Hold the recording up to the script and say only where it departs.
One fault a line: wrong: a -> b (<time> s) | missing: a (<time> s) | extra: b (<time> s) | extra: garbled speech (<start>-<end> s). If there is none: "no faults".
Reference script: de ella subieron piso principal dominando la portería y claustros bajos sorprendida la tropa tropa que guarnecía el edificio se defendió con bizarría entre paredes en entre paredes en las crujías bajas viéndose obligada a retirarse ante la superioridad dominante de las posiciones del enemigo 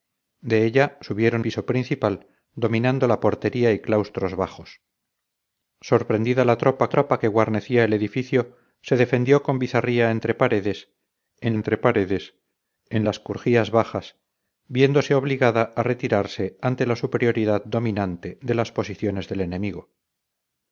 no faults